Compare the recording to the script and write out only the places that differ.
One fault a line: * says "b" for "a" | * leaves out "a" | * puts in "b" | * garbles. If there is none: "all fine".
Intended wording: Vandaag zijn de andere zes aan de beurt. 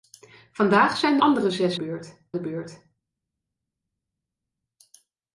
* leaves out "de"
* says "beurt" for "aan"